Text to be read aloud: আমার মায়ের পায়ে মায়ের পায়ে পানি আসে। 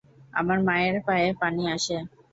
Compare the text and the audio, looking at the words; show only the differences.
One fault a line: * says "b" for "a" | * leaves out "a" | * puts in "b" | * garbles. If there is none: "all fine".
* leaves out "মায়ের পায়ে"